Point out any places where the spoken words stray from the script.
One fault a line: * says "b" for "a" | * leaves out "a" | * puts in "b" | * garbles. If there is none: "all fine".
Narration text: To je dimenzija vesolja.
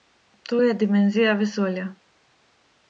all fine